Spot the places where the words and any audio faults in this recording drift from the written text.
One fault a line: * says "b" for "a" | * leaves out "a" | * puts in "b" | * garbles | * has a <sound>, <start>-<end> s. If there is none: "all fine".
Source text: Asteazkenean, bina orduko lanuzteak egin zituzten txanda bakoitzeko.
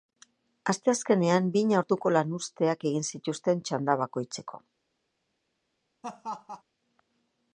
* has a laugh, 6.0-6.6 s